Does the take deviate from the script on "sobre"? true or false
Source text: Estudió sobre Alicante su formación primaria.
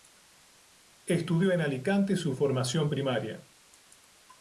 true